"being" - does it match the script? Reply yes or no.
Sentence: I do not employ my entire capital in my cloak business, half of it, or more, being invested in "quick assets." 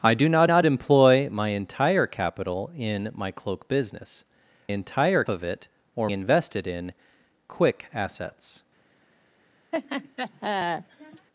no